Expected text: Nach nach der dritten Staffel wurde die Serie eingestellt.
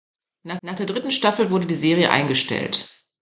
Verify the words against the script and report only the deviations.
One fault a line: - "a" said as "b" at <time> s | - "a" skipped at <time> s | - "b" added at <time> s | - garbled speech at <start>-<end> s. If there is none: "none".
none